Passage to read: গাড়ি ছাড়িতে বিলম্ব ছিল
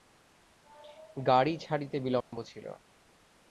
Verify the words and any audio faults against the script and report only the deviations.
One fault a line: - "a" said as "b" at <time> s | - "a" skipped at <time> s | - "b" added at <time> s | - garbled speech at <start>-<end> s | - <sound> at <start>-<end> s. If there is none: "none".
- dropout at 2.2-2.3 s